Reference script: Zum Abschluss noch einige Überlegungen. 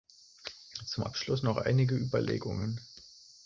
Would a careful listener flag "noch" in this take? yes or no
no